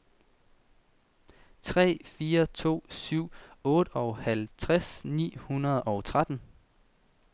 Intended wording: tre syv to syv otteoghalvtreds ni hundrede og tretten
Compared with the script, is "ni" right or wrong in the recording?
right